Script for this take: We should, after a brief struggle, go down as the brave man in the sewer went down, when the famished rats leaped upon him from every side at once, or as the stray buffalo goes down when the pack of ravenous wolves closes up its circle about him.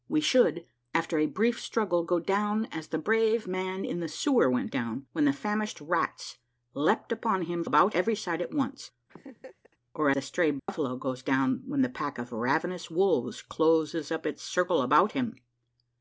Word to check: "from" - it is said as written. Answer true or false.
false